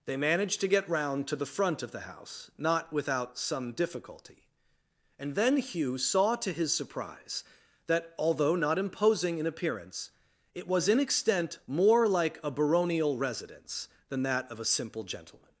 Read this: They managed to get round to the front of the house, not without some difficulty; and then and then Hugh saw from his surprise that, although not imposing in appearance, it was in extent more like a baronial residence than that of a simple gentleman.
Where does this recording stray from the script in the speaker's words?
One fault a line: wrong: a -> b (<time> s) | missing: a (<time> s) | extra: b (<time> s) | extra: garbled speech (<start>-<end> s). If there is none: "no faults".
missing: and then (5.6 s)
wrong: from -> to (6.4 s)